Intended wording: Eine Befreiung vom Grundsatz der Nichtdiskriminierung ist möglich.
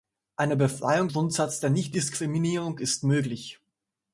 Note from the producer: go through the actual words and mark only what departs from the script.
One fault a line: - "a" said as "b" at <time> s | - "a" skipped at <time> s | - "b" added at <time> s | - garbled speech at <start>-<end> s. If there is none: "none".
- "vom" skipped at 1.1 s